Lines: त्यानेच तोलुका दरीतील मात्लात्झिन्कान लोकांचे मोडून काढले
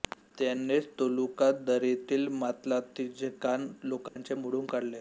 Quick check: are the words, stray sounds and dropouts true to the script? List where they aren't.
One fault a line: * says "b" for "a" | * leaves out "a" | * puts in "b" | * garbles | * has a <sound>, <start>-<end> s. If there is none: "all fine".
* has a dropout, 4.1-4.2 s